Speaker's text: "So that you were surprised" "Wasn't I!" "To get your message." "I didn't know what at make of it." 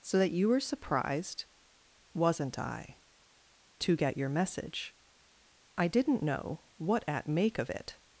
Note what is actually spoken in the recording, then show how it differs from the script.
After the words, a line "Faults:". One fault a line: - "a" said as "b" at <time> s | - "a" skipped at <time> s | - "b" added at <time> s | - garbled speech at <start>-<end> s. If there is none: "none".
"So that you were surprised" "Wasn't I!" "To get your message." "I didn't know what at make of it."
Faults:
none